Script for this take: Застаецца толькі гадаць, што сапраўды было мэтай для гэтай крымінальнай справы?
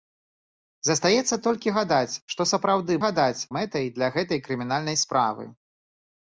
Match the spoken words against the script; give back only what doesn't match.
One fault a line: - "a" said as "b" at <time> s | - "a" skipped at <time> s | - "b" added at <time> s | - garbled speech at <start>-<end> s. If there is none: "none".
- "было" said as "гадаць" at 3.0 s